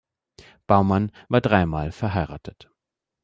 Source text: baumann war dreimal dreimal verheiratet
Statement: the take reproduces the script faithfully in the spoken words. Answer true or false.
false